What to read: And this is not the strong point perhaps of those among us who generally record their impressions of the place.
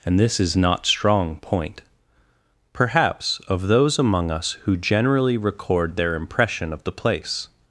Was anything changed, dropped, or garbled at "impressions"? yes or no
yes